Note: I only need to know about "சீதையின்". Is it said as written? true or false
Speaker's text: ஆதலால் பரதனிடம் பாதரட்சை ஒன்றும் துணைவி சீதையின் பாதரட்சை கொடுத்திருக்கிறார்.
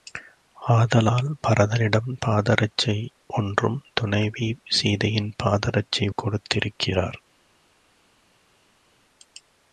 true